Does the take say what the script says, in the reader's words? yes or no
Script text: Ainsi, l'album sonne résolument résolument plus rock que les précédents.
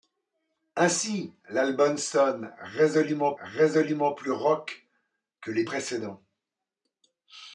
yes